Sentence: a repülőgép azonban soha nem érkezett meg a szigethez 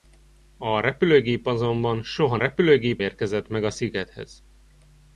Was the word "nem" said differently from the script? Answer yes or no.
yes